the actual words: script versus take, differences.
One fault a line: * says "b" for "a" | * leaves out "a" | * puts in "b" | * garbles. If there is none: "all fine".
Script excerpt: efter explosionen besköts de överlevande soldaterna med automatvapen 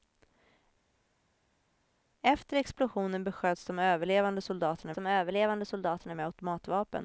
* puts in "de överlevande soldaterna"